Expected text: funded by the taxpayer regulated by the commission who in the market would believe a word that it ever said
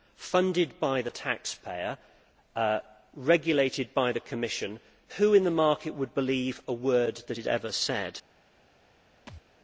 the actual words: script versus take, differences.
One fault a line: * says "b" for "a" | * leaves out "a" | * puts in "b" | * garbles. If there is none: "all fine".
all fine